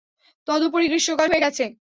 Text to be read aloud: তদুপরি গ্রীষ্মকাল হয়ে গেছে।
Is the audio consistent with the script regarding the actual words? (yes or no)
yes